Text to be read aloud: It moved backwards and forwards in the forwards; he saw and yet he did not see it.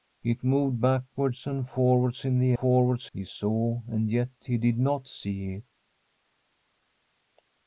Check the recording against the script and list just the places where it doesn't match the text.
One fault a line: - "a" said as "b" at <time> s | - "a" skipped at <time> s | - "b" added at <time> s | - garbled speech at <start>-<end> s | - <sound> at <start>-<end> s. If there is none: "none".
none